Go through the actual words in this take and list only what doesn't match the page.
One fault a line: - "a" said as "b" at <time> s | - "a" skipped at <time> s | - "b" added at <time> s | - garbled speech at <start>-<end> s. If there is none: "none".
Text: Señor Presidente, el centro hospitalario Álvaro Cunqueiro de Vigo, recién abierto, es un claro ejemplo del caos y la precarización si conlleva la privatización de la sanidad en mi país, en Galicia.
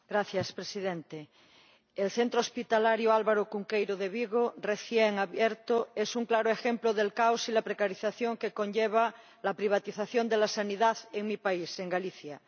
- "si" said as "que" at 8.4 s